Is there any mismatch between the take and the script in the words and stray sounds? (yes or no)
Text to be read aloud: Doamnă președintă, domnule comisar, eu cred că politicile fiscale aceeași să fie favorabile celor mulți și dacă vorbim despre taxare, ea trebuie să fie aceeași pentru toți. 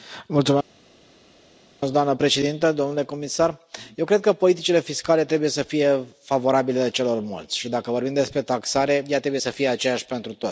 yes